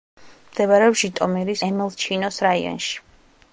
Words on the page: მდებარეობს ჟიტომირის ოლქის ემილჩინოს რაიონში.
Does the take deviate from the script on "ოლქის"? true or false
true